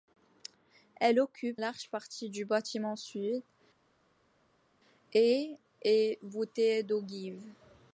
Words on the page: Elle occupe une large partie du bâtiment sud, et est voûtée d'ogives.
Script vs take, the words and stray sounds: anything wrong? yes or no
yes